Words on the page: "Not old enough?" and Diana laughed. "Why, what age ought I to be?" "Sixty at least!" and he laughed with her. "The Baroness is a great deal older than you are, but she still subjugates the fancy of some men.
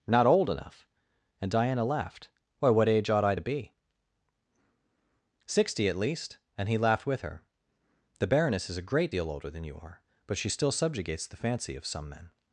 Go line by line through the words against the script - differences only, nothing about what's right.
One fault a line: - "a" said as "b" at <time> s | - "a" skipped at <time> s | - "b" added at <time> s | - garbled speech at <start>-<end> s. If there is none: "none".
none